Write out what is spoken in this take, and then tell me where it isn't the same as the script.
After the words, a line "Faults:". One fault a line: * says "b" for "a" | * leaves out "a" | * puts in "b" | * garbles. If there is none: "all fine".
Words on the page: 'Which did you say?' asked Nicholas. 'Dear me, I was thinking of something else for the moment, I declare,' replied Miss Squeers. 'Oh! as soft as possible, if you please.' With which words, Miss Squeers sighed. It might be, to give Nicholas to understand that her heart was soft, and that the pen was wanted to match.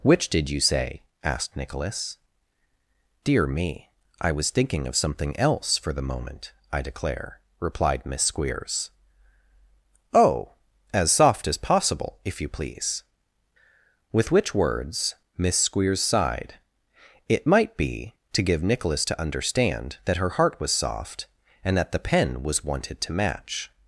'Which did you say?' asked Nicholas. 'Dear me, I was thinking of something else for the moment, I declare,' replied Miss Squeers. 'Oh! as soft as possible, if you please.' With which words, Miss Squeers sighed. It might be, to give Nicholas to understand that her heart was soft, and that the pen was wanted to match.
Faults:
all fine